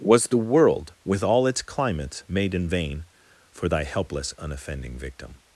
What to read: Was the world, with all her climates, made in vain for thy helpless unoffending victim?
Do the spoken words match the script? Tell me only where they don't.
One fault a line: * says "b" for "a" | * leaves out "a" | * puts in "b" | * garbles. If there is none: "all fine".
* says "its" for "her"